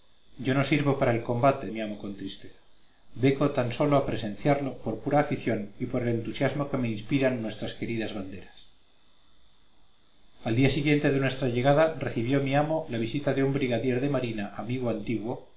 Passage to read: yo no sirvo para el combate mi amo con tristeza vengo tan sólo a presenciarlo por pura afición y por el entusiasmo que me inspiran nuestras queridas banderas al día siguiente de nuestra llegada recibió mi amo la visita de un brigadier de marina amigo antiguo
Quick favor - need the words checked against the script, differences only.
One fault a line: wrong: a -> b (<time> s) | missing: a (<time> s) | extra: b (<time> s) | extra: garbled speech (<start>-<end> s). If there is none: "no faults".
no faults